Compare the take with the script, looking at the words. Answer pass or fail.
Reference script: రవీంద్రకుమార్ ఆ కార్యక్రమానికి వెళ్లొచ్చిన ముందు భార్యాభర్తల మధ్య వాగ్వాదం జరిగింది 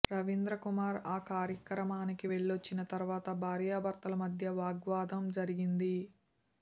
fail